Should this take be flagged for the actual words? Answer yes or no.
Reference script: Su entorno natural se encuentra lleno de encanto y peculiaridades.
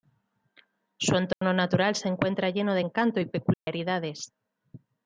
no